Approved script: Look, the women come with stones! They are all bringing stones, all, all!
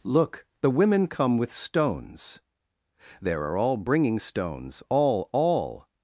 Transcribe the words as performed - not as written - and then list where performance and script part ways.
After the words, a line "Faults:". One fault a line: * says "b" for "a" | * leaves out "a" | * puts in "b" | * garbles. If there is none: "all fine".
Look, the women come with stones! There are all bringing stones, all, all!
Faults:
* says "There" for "They"